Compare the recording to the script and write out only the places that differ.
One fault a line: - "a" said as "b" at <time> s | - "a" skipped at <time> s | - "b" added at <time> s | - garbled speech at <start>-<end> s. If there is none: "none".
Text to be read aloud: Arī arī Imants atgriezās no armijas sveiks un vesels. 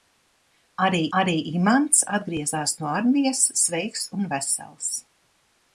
none